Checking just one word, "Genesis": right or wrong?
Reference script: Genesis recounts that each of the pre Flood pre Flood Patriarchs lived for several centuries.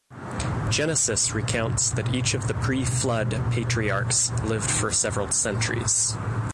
right